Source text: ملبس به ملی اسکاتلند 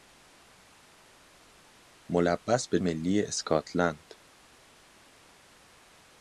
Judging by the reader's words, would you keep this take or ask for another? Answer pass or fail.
pass